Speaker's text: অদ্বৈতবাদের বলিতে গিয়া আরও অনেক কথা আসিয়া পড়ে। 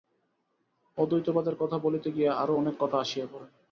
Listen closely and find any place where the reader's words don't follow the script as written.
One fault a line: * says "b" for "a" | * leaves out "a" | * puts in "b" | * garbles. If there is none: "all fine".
* puts in "কথা"